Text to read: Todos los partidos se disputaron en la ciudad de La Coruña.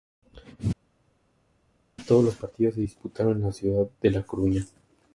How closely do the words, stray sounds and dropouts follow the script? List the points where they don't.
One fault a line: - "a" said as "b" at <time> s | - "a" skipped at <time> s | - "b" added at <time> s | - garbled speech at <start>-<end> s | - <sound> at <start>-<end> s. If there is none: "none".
none